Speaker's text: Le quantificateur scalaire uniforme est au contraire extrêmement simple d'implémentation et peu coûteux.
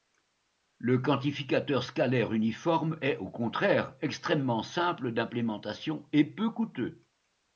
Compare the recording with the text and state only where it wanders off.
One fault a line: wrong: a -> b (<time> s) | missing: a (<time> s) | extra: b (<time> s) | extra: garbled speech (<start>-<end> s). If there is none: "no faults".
no faults